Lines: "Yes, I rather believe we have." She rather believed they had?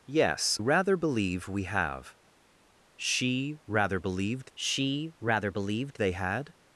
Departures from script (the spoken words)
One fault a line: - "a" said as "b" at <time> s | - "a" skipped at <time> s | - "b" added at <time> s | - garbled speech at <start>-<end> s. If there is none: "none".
- "I" skipped at 0.6 s
- "she rather believed" added at 4.5 s